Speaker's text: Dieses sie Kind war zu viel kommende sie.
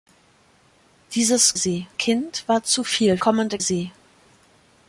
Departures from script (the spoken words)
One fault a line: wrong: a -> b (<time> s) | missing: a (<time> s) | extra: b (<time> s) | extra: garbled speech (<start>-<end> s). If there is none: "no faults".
no faults